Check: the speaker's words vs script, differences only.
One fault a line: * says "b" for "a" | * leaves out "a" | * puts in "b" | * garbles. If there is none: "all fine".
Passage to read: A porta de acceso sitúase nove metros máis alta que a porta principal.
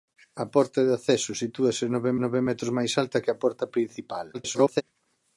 * puts in "nove"
* garbles